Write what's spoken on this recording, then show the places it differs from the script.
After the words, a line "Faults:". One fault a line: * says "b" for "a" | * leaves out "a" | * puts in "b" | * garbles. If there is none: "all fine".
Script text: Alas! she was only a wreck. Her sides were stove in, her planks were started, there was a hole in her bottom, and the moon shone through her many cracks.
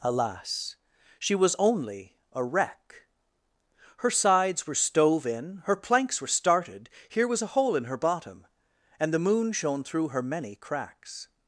Alas! she was only a wreck. Her sides were stove in, her planks were started, here was a hole in her bottom, and the moon shone through her many cracks.
Faults:
* says "here" for "there"